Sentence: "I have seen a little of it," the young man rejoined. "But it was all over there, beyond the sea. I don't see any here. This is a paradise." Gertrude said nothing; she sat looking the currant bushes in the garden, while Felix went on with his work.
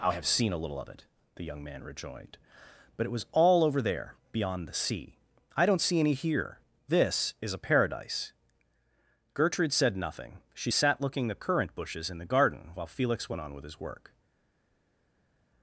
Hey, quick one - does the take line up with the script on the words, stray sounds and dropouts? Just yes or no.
yes